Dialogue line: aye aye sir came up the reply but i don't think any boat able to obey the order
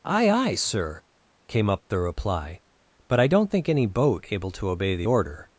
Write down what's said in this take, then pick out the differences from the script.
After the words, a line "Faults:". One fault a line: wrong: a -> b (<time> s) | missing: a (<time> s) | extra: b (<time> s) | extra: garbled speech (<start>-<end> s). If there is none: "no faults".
aye aye sir came up the reply but i don't think any boat able to obey the order
Faults:
no faults